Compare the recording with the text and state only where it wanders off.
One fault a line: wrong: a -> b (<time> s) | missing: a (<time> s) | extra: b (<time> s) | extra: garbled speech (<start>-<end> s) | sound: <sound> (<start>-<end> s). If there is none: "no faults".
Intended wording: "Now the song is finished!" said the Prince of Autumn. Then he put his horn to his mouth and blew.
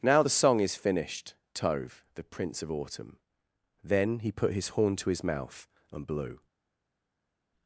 wrong: said -> tove (1.5 s)